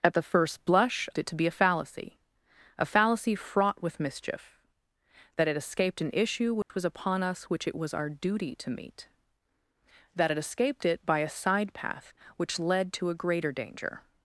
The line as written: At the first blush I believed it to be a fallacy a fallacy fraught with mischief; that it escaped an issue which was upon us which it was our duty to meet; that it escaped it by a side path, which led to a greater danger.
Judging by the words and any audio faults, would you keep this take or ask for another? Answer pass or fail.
fail